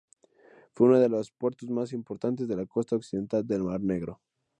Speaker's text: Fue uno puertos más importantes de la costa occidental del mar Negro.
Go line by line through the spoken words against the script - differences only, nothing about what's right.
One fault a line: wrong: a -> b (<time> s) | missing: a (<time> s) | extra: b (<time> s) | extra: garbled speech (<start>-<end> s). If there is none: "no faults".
extra: de los (1.0 s)